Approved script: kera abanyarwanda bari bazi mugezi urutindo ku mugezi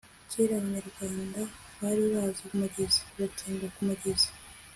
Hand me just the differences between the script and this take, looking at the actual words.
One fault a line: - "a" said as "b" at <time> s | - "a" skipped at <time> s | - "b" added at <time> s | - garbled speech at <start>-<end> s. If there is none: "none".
none